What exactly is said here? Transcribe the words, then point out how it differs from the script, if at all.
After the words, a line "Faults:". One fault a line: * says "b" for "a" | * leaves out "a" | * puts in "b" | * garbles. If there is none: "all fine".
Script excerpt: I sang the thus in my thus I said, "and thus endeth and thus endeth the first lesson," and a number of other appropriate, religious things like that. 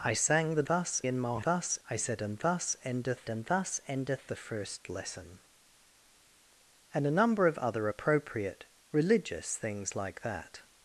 I sang the thus in my thus I said, "and thus endeth and thus endeth the first lesson," and a number of other appropriate, religious things like that.
Faults:
all fine